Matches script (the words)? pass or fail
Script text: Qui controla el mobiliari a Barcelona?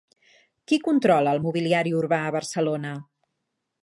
fail